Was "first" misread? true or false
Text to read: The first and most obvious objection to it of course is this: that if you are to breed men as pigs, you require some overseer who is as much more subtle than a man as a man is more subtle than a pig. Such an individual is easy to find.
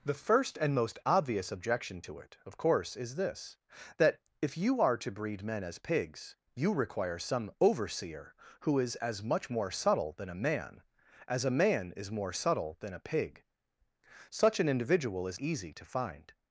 false